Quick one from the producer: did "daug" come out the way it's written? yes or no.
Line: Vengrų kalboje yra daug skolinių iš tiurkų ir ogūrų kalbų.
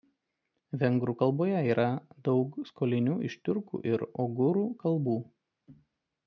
yes